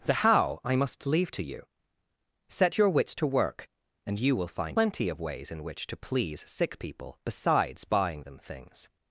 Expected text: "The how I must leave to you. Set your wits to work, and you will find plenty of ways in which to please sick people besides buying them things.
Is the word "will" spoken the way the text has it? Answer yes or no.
yes